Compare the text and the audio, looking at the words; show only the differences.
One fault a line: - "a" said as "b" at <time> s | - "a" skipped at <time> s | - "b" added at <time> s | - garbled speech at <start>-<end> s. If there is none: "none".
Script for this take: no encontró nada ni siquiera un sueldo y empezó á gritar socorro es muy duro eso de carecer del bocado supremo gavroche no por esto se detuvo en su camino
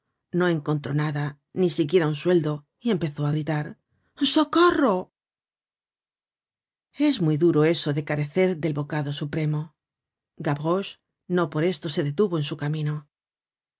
none